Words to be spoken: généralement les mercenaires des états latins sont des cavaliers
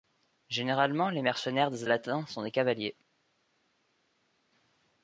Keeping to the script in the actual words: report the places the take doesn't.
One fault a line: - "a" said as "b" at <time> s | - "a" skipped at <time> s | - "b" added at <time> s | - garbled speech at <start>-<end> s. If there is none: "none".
- "états" skipped at 1.8 s